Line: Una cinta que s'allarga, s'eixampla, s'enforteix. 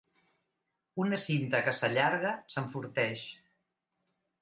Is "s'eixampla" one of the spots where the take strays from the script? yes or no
yes